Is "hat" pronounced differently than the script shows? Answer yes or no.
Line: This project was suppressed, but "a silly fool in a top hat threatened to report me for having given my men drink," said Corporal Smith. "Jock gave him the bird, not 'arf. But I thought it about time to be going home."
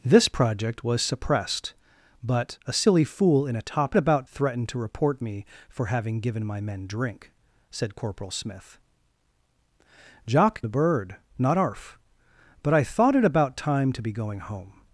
yes